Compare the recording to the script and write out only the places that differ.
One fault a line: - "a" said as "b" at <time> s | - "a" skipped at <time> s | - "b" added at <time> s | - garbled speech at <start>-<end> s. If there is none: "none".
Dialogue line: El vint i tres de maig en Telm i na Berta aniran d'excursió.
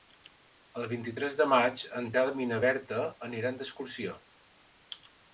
none